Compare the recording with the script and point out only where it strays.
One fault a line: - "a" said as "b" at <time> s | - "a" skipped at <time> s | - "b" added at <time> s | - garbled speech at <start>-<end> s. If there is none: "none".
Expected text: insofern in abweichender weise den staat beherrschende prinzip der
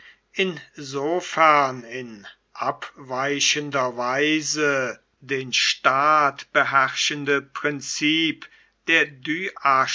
none